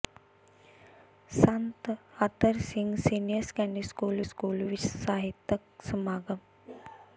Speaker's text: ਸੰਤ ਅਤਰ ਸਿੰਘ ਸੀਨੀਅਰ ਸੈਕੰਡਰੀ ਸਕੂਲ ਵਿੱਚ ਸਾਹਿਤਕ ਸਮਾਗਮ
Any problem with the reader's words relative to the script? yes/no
yes